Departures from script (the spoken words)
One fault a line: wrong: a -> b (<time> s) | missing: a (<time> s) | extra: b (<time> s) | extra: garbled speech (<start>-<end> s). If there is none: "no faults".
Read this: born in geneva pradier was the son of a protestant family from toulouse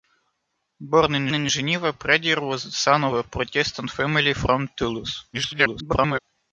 extra: in (1.3 s)
extra: garbled speech (5.3-6.2 s)